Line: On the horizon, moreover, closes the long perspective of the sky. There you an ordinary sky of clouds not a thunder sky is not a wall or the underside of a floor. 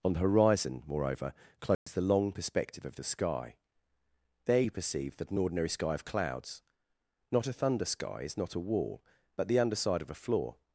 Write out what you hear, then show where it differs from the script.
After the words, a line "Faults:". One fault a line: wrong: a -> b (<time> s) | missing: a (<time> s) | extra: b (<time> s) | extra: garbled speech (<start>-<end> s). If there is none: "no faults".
On the horizon, moreover, closes the long perspective of the sky. There you perceive that an ordinary sky of clouds not a thunder sky is not a wall but the underside of a floor.
Faults:
extra: perceive that (4.7 s)
wrong: or -> but (9.4 s)